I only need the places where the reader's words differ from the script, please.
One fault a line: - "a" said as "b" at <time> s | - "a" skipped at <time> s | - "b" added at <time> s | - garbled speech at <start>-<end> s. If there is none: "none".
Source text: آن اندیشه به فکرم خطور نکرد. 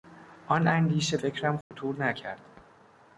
- "به" skipped at 1.2 s